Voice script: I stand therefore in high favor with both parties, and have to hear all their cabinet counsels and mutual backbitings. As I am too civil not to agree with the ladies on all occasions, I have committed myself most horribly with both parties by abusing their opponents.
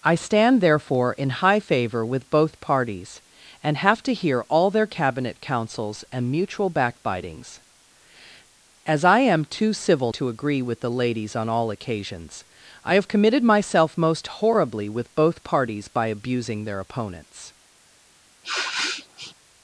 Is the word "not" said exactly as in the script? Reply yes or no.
no